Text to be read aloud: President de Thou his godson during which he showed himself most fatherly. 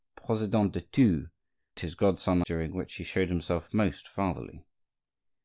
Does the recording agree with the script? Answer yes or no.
yes